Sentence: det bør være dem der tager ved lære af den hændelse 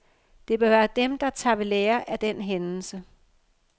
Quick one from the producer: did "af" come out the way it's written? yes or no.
yes